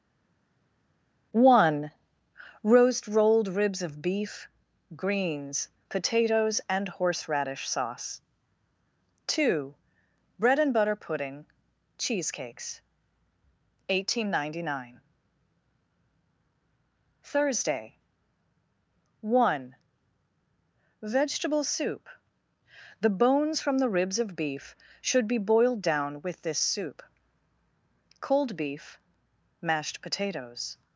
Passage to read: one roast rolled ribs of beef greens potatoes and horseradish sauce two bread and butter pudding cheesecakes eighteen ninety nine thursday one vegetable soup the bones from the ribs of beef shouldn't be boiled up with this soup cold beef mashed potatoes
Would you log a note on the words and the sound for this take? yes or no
yes